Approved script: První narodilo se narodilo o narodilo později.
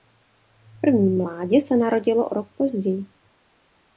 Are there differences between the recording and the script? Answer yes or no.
yes